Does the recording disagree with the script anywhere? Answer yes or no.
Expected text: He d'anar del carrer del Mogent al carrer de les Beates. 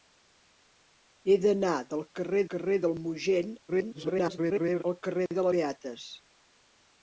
yes